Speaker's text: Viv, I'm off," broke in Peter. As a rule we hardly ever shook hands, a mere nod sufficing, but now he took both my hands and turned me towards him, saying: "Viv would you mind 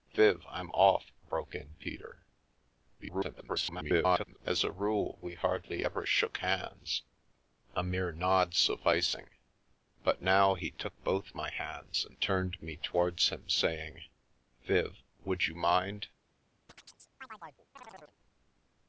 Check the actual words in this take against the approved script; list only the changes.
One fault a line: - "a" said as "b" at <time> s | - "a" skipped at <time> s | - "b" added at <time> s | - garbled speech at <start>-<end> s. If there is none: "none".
- garbled speech at 3.0-4.4 s